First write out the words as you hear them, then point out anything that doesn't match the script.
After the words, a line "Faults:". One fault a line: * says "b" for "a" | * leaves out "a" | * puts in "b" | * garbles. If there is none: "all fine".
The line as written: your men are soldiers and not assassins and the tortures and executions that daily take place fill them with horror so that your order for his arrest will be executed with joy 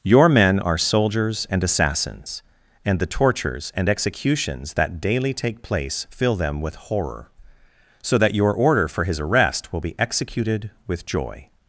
your men are soldiers and assassins and the tortures and executions that daily take place fill them with horror so that your order for his arrest will be executed with joy
Faults:
* leaves out "not"